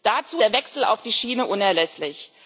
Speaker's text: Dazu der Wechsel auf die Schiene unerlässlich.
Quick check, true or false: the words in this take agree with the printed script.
true